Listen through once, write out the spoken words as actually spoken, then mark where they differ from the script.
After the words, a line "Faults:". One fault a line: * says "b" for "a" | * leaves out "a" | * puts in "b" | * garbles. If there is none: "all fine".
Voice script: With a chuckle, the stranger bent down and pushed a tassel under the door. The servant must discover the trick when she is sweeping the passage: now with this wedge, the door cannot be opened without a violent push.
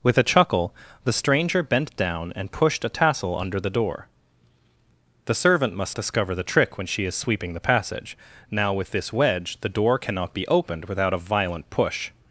With a chuckle, the stranger bent down and pushed a tassel under the door. The servant must discover the trick when she is sweeping the passage: now with this wedge, the door cannot be opened without a violent push.
Faults:
all fine